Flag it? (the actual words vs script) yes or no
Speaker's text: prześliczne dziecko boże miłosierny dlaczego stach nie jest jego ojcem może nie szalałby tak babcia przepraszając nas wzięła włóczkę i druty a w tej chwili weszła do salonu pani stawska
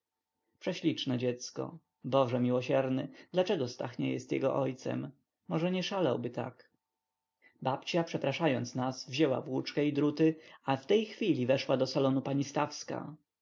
no